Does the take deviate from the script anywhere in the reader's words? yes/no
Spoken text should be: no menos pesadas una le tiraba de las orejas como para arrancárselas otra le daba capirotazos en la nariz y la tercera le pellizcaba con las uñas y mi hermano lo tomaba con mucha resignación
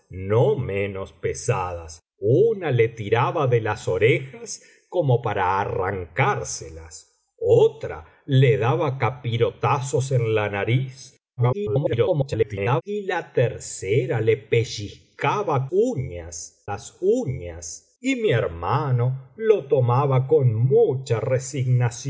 yes